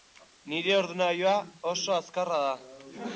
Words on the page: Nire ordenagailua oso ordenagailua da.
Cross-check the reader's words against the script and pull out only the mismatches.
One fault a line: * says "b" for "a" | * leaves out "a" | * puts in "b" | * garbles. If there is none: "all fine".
* says "azkarra" for "ordenagailua"